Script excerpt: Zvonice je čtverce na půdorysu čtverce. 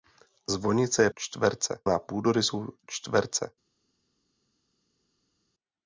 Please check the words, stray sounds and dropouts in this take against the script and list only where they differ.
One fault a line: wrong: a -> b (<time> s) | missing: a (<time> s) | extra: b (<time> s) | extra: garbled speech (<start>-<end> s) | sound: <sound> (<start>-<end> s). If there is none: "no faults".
no faults